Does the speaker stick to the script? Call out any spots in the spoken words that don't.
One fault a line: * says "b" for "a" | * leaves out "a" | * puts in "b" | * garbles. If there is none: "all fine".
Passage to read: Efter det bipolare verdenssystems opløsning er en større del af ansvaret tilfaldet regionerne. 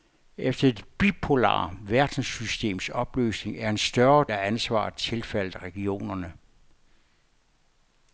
* leaves out "del"